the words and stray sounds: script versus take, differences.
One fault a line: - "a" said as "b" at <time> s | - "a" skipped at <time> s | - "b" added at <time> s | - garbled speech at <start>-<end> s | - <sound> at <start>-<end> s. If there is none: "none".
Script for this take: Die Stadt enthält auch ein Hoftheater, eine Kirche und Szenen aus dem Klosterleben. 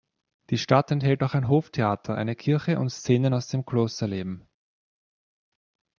none